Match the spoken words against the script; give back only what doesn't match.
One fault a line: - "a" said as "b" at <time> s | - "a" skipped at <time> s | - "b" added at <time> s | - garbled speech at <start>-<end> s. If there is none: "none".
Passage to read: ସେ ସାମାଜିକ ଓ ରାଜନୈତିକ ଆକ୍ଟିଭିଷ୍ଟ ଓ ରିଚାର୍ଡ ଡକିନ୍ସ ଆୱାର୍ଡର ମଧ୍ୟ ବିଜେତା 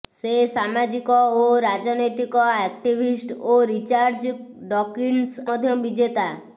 - "ଆୱାର୍ଡର" skipped at 5.5 s